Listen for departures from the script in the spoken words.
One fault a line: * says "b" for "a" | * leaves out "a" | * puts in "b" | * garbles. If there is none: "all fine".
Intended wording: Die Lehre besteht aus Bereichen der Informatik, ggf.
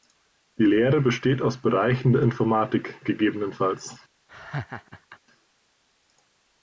all fine